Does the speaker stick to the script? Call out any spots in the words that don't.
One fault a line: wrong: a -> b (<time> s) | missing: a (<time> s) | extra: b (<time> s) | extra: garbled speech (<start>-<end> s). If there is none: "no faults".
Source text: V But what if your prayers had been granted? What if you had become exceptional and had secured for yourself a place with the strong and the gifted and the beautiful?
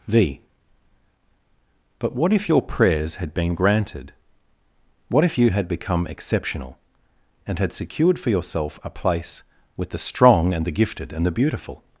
no faults